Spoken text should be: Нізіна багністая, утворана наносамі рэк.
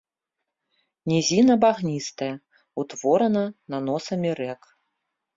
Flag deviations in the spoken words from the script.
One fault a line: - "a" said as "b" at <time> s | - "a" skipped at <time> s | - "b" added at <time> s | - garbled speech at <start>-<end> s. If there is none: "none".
none